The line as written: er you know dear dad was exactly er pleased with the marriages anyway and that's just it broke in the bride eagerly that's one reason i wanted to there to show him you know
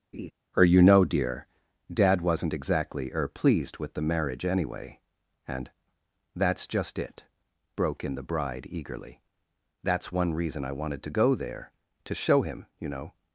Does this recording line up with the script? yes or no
no